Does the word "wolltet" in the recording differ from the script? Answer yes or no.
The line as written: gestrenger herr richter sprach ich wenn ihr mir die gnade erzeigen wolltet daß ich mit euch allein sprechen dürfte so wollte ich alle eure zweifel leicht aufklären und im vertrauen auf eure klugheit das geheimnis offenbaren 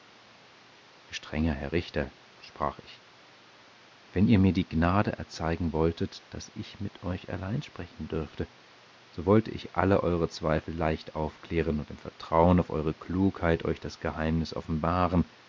no